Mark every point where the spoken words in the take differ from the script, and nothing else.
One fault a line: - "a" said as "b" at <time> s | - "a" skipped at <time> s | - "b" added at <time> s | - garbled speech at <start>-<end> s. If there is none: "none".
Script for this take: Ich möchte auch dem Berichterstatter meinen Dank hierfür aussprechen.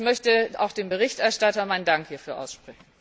none